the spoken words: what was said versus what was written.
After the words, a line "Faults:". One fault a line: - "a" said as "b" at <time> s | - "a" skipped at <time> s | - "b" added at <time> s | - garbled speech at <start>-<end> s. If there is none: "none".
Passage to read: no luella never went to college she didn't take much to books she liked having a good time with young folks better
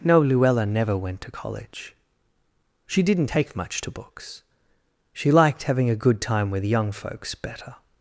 no luella never went to college she didn't take much to books she liked having a good time with young folks better
Faults:
none